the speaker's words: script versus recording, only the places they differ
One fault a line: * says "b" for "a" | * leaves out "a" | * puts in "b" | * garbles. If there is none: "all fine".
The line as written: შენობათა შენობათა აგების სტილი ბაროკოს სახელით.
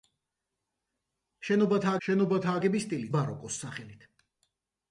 all fine